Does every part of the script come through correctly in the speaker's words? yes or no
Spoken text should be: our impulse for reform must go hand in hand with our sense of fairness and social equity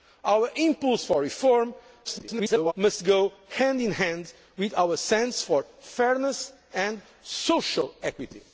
no